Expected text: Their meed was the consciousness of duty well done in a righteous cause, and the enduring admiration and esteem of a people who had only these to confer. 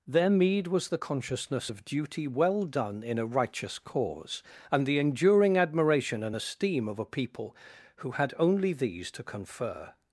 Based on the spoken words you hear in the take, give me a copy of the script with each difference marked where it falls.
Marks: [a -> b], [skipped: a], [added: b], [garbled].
Their meed was the consciousness of duty well done in a righteous cause, and the enduring admiration and esteem of a people who had only these to confer.